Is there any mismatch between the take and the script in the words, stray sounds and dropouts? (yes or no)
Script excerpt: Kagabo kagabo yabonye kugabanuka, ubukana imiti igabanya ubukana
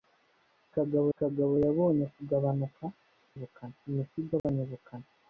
yes